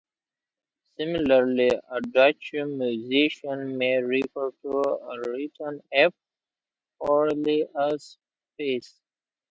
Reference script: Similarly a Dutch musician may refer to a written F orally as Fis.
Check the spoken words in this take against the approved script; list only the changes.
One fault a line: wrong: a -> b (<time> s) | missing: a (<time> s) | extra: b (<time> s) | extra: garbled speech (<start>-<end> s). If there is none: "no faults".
no faults